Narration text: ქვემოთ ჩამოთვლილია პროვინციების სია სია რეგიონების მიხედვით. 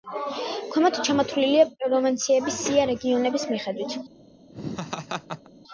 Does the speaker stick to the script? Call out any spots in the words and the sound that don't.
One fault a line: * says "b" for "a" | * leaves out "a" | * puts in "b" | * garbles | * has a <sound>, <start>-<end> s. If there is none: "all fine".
* leaves out "სია"
* has a laugh, 4.5-5.5 s